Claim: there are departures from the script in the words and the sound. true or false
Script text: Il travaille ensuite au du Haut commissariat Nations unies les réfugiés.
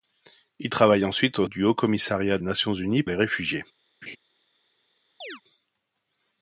true